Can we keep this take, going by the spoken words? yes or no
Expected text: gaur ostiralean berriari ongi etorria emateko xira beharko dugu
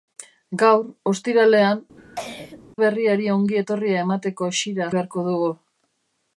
yes